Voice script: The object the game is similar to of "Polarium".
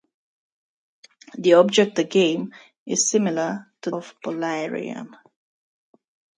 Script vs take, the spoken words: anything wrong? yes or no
no